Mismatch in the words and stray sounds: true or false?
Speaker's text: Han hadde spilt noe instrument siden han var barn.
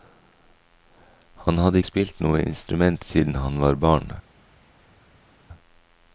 false